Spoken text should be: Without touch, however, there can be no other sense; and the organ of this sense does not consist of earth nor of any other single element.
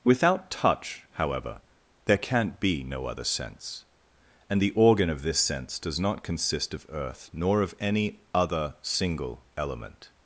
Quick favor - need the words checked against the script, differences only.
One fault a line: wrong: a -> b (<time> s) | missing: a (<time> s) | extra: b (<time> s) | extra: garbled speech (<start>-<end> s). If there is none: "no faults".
wrong: can -> can't (2.2 s)